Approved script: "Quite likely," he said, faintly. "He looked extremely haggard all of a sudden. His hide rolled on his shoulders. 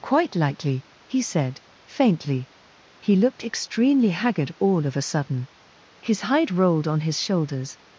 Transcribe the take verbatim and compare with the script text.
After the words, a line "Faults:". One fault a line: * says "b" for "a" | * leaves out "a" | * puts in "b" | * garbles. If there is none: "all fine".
"Quite likely," he said, faintly. "He looked extremely haggard all of a sudden. His hide rolled on his shoulders.
Faults:
all fine